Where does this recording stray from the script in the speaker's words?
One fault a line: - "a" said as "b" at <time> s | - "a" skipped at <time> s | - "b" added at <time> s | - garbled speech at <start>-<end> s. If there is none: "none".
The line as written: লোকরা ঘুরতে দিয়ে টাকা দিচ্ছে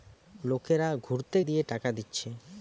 none